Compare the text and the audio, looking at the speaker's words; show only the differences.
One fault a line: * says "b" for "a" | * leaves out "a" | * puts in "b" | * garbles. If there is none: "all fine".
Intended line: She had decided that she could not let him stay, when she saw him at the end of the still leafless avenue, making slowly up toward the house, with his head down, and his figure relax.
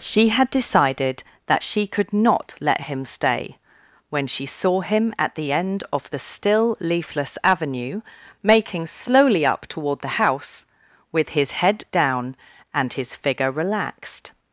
* says "relaxed" for "relax"